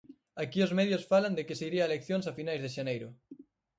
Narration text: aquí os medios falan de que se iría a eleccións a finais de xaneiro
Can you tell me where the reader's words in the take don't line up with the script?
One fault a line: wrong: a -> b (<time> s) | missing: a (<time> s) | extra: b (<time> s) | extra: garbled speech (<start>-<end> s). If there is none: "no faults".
no faults